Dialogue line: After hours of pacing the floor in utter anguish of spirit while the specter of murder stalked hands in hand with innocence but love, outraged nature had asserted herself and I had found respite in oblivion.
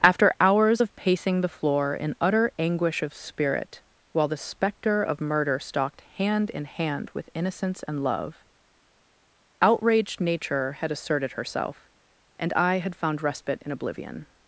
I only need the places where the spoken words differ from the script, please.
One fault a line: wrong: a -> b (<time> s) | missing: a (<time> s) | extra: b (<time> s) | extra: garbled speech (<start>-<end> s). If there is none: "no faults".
wrong: hands -> hand (6.1 s)
wrong: but -> and (7.8 s)